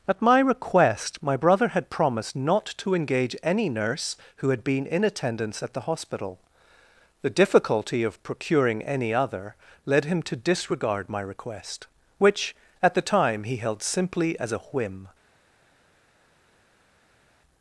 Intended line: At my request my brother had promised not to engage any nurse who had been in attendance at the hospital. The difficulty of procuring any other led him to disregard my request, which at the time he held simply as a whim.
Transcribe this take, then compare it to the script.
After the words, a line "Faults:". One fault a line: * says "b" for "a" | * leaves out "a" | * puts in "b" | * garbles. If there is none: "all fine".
At my request my brother had promised not to engage any nurse who had been in attendance at the hospital. The difficulty of procuring any other led him to disregard my request, which at the time he held simply as a whim.
Faults:
all fine